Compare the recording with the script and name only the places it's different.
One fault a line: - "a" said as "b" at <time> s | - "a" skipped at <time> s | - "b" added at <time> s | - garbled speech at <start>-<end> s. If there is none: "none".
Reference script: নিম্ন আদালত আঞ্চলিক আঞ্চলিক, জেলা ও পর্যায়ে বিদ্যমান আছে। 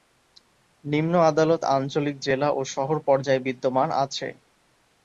- "আঞ্চলিক" skipped at 2.1 s
- "শহর" added at 2.7 s